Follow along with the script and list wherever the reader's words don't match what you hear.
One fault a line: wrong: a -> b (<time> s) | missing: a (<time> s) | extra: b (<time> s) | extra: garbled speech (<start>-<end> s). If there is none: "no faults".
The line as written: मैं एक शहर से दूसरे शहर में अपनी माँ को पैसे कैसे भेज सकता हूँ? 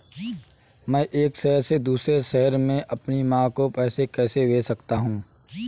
no faults